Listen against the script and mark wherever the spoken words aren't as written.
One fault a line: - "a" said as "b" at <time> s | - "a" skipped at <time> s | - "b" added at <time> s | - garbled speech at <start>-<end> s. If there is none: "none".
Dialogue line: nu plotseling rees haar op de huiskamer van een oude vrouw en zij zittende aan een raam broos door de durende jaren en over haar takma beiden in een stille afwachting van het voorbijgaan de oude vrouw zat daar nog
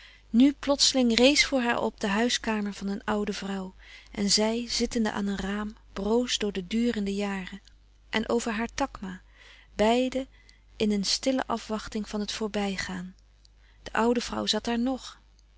- "voor" added at 1.4 s